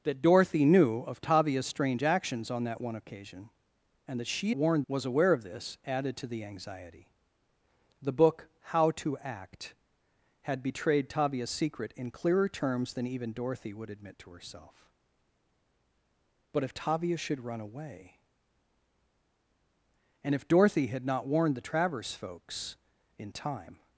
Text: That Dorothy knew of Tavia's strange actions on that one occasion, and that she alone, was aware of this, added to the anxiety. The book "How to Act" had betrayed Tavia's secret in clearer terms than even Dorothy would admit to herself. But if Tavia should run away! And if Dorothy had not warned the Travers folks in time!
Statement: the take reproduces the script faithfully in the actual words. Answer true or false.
false